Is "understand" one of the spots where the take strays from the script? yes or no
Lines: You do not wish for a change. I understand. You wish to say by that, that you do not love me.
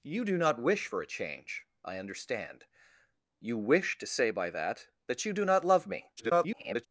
no